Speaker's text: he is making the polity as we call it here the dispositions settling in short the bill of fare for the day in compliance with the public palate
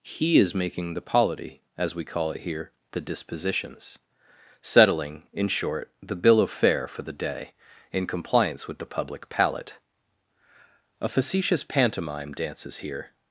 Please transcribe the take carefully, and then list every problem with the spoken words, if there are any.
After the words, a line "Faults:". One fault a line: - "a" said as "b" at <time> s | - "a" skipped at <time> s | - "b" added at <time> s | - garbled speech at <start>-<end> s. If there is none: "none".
he is making the polity as we call it here the dispositions settling in short the bill of fare for the day in compliance with the public palate a facetious pantomime dances here
Faults:
- "a facetious pantomime dances here" added at 11.0 s